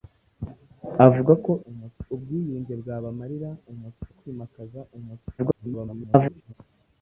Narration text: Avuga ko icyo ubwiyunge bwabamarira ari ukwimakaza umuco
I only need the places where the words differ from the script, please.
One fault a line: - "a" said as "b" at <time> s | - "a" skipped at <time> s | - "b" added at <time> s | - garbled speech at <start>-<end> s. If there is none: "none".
- "icyo" said as "umuco" at 1.7 s
- "ari" said as "umuco" at 3.7 s
- garbled speech at 5.4-6.5 s